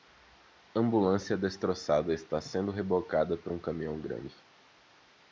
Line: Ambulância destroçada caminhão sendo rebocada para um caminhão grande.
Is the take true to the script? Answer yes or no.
no